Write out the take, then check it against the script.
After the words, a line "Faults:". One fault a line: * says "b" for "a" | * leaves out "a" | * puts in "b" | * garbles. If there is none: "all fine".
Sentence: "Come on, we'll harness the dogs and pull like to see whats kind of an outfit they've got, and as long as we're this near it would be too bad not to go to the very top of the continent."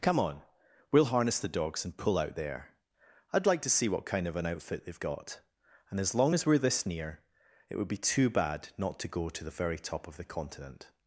"Come on, we'll harness the dogs and pull out there. I'd like to see what kind of an outfit they've got, and as long as we're this near it would be too bad not to go to the very top of the continent."
Faults:
* puts in "out there I'd"
* says "what" for "whats"